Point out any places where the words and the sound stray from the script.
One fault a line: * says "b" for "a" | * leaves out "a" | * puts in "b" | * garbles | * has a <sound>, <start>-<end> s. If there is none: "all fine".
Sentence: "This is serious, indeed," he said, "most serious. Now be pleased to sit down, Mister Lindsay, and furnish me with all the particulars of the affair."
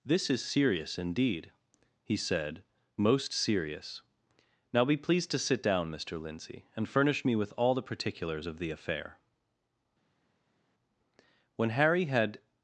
* puts in "When Harry had"